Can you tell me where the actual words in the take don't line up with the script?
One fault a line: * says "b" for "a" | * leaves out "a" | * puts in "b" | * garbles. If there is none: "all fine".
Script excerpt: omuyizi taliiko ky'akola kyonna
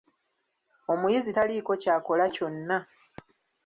all fine